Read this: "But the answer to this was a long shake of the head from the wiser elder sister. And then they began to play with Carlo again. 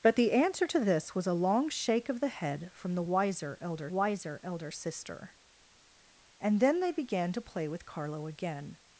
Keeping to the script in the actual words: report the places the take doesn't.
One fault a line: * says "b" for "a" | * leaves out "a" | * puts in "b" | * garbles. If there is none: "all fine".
* puts in "wiser elder"